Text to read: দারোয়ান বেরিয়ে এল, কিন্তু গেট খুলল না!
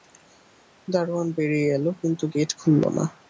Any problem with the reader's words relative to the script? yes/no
no